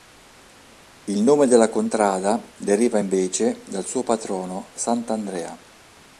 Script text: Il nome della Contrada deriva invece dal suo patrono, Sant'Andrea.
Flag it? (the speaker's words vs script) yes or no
no